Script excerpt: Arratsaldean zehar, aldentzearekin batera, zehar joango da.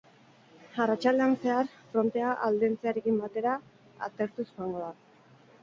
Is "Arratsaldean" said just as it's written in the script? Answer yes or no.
yes